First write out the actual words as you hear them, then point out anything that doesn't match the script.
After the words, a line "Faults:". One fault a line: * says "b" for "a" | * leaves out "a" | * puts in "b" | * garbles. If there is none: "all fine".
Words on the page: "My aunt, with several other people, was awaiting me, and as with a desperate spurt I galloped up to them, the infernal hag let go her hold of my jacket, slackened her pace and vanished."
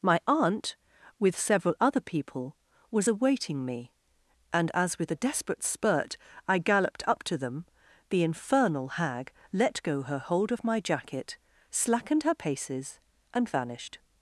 "My aunt, with several other people, was awaiting me, and as with a desperate spurt I galloped up to them, the infernal hag let go her hold of my jacket, slackened her paces and vanished."
Faults:
* says "paces" for "pace"